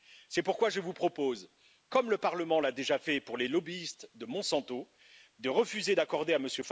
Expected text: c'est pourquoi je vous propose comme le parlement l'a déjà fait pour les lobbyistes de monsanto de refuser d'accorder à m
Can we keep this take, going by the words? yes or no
yes